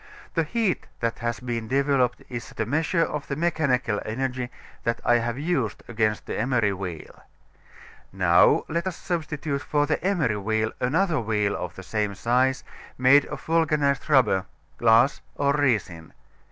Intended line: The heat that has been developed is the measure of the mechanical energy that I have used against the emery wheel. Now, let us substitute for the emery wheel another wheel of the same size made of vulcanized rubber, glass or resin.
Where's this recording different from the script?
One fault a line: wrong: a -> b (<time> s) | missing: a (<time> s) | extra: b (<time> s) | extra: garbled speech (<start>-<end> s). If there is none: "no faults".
no faults